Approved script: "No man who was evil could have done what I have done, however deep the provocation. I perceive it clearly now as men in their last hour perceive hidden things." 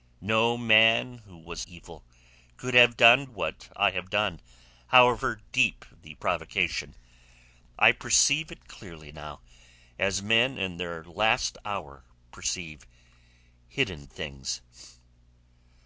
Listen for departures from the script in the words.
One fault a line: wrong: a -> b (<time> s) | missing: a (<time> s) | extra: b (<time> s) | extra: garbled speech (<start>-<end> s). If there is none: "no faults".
no faults